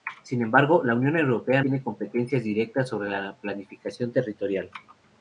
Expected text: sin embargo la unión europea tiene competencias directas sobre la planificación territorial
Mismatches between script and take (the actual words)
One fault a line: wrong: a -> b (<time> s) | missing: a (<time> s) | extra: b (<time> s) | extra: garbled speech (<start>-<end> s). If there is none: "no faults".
no faults